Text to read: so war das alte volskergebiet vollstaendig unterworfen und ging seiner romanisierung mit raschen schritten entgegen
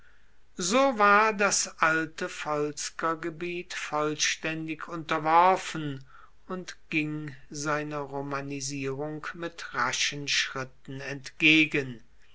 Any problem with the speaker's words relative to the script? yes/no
no